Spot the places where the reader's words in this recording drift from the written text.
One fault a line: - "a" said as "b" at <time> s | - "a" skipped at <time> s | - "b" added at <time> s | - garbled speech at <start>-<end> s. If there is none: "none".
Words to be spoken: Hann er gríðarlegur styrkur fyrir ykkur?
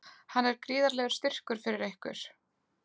none